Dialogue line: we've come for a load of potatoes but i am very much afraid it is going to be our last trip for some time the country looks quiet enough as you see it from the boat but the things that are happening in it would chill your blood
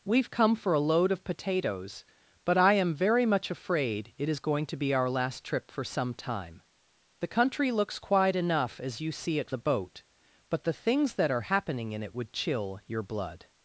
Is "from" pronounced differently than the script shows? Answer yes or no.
yes